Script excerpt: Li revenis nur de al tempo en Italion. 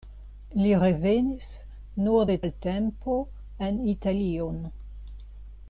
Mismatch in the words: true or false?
false